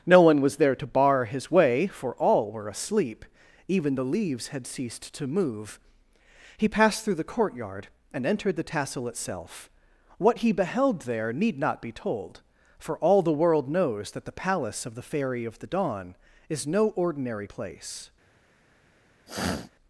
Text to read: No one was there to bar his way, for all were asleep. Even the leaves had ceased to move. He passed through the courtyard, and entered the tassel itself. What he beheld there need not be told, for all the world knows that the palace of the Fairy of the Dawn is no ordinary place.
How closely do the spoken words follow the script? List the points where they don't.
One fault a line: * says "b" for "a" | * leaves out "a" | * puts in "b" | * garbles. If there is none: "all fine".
all fine